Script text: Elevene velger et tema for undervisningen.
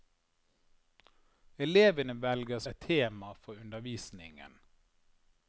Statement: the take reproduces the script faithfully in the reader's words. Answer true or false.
true